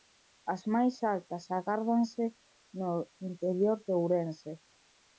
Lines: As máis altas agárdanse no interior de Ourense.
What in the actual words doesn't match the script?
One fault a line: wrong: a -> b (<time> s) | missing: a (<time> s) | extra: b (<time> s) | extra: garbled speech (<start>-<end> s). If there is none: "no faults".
no faults